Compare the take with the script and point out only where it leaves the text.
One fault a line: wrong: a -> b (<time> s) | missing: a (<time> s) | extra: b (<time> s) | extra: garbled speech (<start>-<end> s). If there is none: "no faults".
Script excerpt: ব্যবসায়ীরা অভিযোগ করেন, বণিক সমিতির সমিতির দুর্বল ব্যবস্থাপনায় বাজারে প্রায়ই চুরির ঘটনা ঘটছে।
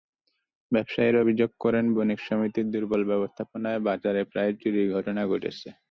missing: সমিতির (2.7 s)